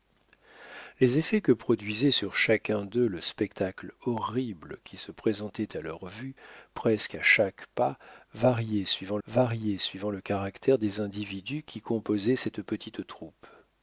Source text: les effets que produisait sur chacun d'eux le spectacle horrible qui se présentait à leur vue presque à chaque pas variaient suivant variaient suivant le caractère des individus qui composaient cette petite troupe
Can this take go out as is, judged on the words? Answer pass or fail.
pass